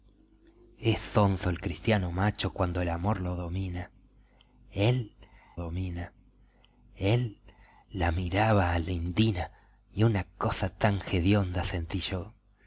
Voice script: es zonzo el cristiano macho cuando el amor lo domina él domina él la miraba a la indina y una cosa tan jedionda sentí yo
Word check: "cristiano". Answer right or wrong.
right